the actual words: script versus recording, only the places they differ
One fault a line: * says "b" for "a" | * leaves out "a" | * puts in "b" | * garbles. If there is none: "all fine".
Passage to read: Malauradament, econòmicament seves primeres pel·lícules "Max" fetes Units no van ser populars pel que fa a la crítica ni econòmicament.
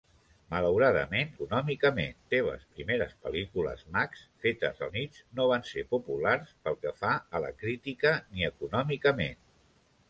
all fine